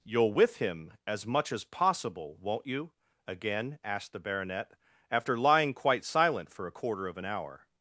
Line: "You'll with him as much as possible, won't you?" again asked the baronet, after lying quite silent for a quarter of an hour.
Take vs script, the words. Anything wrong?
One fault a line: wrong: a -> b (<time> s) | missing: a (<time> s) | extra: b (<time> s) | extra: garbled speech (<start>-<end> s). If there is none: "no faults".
no faults